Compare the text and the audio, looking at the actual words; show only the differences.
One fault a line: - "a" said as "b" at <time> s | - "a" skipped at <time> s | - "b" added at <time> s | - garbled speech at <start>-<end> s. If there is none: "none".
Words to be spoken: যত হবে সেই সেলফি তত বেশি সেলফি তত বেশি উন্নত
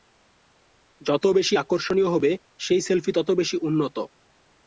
- "বেশি আকর্ষণীয়" added at 1.4 s
- "সেলফি তত বেশি" skipped at 3.6 s